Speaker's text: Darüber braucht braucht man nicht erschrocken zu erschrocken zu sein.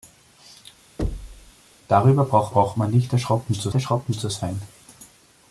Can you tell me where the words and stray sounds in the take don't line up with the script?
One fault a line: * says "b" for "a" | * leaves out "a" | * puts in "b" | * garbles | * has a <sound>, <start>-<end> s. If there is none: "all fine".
* has a thud, 1.0-1.5 s